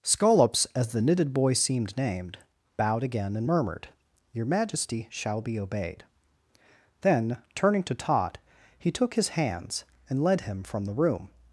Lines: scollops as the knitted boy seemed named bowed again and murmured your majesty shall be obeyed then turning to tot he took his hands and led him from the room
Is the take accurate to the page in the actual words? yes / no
yes